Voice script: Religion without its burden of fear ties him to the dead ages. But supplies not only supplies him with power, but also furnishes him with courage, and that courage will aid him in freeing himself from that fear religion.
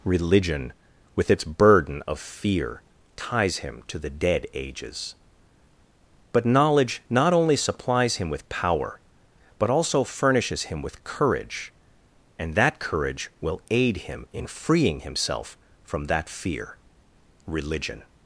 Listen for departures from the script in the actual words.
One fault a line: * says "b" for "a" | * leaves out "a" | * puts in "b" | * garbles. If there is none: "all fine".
* says "with" for "without"
* says "knowledge" for "supplies"